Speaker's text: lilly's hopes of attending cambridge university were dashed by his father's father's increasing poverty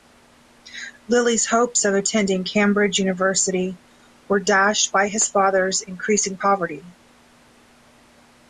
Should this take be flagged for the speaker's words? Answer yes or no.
yes